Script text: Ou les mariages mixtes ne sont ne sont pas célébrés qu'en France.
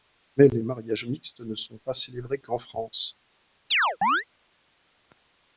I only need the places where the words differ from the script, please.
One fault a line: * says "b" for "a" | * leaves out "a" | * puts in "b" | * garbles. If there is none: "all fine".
* says "Mais" for "Ou"
* leaves out "ne sont"